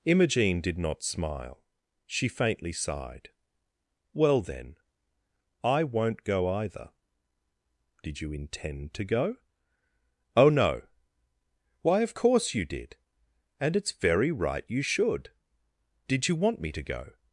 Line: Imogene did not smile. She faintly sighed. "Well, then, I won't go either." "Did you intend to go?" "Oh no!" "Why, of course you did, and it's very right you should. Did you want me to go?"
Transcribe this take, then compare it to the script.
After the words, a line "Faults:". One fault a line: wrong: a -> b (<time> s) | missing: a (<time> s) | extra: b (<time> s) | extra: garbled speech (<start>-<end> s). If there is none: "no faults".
Imogene did not smile. She faintly sighed. "Well, then, I won't go either." "Did you intend to go?" "Oh no!" "Why, of course you did, and it's very right you should. Did you want me to go?"
Faults:
no faults